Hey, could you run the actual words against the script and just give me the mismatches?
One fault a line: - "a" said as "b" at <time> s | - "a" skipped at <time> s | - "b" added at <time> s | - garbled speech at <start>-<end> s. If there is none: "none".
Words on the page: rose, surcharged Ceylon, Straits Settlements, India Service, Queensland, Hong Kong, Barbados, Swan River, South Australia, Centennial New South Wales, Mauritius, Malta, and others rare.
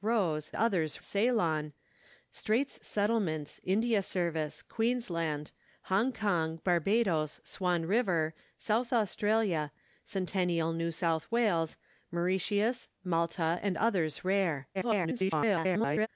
- "surcharged" said as "others" at 0.5 s
- garbled speech at 14.7-16.1 s